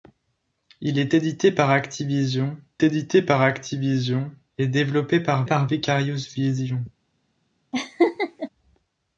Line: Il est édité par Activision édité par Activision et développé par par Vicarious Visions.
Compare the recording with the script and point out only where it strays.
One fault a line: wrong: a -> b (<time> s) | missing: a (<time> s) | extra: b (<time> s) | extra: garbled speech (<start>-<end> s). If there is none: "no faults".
no faults